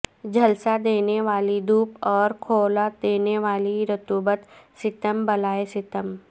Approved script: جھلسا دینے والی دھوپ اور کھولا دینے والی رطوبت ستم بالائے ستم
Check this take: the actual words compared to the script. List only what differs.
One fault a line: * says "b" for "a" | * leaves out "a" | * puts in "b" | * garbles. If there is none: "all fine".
all fine